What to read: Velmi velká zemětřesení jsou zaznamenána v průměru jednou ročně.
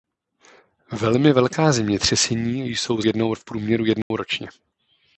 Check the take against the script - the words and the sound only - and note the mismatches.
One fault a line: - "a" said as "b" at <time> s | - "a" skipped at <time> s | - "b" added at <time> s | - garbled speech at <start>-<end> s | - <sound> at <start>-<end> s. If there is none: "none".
- "zaznamenána" said as "jednou" at 3.0 s
- dropout at 4.0-4.1 s